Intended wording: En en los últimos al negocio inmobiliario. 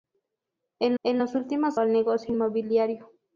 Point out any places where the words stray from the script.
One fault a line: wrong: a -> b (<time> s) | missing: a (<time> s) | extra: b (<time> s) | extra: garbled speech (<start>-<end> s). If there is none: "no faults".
no faults